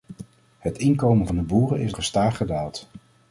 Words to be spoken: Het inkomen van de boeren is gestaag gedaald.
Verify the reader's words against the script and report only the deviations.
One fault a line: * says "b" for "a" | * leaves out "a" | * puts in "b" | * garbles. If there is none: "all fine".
all fine